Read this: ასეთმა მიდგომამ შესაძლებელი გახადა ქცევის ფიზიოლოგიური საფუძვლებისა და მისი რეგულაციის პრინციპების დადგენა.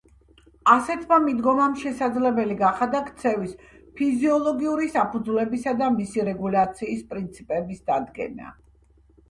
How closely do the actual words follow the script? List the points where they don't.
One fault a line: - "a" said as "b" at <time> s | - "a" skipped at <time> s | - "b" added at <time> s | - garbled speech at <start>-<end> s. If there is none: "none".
none